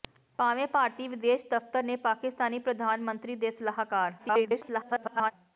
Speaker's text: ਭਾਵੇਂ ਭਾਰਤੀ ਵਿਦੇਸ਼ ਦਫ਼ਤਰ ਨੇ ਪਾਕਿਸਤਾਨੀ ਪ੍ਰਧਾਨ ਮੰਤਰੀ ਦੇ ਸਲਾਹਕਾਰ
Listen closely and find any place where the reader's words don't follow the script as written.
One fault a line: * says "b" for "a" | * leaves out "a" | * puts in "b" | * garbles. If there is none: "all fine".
* garbles